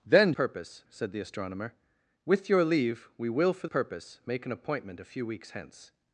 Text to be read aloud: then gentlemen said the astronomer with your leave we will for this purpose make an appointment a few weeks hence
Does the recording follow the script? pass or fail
fail